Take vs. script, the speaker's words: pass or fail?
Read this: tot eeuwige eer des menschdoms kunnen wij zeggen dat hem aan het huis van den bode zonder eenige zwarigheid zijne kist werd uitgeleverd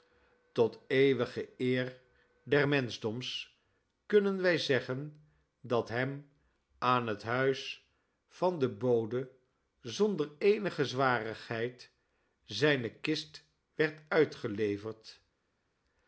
pass